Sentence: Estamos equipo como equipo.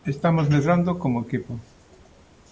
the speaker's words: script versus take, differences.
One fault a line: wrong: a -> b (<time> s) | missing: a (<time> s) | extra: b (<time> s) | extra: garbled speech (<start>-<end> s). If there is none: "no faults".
wrong: equipo -> medrando (0.5 s)